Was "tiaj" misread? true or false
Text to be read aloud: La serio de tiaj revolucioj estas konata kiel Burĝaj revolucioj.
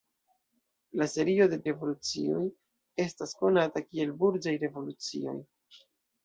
true